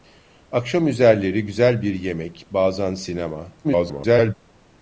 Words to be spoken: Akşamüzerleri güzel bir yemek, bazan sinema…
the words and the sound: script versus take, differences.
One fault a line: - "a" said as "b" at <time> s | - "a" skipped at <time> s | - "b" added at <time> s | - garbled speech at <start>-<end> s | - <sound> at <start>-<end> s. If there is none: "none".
- garbled speech at 3.6-4.3 s